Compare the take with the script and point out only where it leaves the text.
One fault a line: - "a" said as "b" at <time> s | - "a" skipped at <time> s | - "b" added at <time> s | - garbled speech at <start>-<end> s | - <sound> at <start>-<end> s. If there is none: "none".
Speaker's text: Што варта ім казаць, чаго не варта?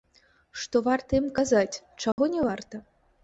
- dropout at 2.1-2.2 s